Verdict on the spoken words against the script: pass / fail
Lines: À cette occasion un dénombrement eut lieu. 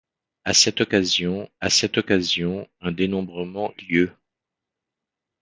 fail